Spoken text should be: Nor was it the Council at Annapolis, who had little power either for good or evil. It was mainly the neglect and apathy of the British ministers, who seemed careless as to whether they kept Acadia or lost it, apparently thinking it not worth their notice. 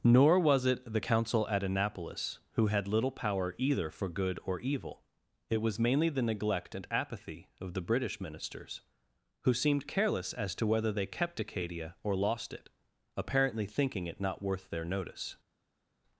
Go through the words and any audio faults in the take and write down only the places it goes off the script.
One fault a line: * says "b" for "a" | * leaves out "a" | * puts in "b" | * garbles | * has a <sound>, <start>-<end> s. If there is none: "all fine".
all fine